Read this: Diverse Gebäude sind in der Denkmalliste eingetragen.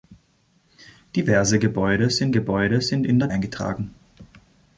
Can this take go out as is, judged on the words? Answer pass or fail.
fail